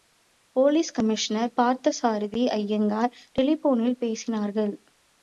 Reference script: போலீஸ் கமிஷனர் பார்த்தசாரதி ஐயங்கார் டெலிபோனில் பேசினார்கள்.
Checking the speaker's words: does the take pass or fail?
pass